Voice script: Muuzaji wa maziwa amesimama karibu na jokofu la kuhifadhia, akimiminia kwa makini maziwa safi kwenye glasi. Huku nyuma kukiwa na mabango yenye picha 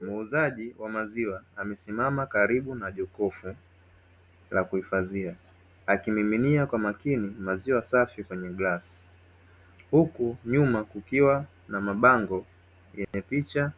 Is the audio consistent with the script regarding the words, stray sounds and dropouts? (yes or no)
no